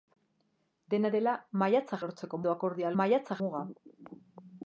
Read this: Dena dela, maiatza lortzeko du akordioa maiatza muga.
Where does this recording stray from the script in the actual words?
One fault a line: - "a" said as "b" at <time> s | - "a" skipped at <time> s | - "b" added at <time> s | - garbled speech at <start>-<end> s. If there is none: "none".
none